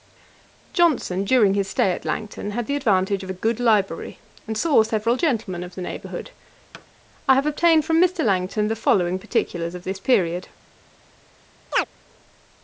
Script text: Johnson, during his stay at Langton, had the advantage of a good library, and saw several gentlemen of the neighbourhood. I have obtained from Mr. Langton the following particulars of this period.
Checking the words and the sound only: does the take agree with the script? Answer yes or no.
no